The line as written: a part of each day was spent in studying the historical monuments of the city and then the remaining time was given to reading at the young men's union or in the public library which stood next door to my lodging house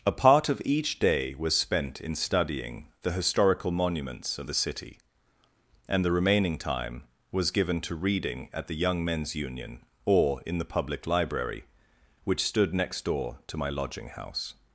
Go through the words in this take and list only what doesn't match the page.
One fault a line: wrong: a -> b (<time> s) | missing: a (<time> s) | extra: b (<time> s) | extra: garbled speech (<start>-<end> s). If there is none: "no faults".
missing: then (6.0 s)